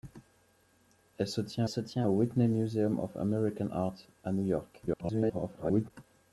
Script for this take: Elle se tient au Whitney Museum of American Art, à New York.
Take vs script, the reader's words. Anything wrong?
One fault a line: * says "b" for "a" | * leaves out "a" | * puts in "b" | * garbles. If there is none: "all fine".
* puts in "se tient"
* garbles